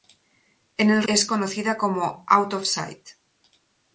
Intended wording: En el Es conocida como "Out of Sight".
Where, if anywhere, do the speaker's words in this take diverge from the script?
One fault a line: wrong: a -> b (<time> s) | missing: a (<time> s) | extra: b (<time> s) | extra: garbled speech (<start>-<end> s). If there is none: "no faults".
no faults